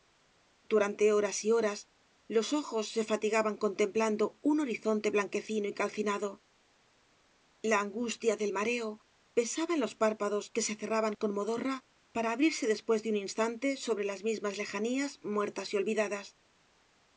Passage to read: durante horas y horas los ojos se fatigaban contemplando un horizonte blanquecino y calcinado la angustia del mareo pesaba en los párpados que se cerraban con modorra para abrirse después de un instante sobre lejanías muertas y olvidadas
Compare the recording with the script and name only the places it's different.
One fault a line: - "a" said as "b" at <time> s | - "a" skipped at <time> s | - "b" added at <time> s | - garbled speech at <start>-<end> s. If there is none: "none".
- "las mismas" added at 14.0 s